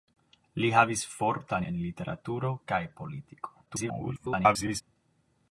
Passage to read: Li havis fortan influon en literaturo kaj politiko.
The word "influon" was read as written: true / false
false